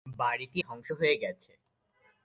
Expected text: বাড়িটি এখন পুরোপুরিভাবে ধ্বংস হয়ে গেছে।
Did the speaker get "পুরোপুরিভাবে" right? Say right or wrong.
wrong